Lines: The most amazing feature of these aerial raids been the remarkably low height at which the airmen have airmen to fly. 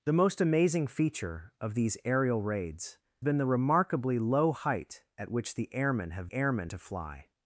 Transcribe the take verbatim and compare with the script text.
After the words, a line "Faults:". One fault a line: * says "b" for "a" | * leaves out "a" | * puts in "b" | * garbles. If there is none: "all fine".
The most amazing feature of these aerial raids been the remarkably low height at which the airmen have airmen to fly.
Faults:
all fine